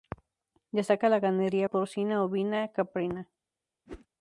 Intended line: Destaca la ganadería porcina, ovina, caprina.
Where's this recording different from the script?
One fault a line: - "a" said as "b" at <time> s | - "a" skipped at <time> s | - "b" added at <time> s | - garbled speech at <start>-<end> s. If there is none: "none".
none